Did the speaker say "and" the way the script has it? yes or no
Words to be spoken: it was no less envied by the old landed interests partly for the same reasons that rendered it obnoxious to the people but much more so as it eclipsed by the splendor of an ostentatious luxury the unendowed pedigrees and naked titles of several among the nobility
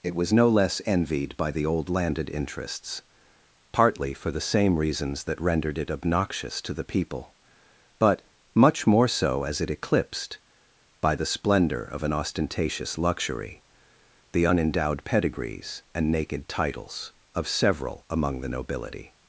yes